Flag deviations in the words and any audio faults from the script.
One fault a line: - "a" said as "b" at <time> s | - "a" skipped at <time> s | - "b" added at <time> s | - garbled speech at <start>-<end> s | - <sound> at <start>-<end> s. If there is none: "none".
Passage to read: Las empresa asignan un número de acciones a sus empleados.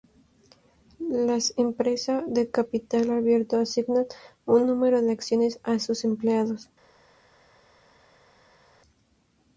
- "de capital abierto" added at 2.2 s